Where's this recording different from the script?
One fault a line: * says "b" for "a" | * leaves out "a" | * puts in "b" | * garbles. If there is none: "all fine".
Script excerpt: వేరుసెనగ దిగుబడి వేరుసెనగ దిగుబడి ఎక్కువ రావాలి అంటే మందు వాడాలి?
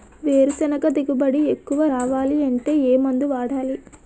* leaves out "వేరుసెనగ దిగుబడి"
* puts in "ఏ"